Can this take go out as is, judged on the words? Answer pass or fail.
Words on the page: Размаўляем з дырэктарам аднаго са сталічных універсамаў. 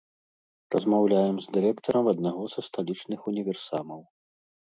pass